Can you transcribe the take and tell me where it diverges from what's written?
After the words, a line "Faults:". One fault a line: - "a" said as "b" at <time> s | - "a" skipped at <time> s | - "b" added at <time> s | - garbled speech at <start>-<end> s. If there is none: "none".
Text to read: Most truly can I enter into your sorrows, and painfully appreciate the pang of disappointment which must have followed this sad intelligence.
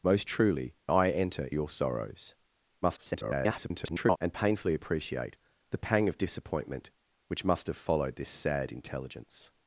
Most truly I enter your sorrows, [garbled] and painfully appreciate the pang of disappointment which must have followed this sad intelligence.
Faults:
- "can" skipped at 0.8 s
- "into" skipped at 1.5 s
- garbled speech at 2.8-4.2 s